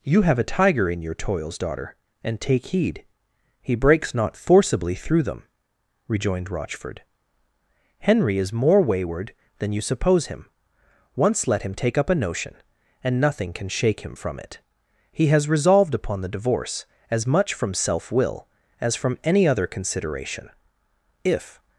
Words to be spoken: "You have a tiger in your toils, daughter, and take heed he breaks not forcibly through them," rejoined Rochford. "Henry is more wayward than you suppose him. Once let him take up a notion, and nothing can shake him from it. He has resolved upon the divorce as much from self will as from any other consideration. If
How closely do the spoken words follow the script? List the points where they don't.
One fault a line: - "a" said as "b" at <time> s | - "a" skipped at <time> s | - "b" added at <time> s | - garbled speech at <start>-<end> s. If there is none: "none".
none